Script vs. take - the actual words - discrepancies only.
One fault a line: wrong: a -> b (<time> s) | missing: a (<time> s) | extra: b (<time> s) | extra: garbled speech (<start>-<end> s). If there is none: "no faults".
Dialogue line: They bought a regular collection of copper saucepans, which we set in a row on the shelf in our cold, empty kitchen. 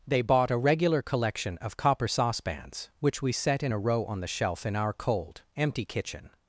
no faults